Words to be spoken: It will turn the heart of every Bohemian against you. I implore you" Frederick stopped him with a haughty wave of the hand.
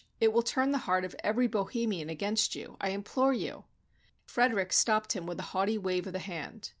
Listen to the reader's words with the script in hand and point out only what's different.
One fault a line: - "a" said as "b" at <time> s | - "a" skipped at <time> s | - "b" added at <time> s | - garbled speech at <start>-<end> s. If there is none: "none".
none